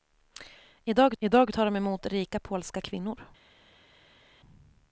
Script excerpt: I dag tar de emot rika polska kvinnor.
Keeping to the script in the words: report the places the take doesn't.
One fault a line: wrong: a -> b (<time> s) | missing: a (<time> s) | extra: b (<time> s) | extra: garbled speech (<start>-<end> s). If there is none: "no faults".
extra: I dag (1.2 s)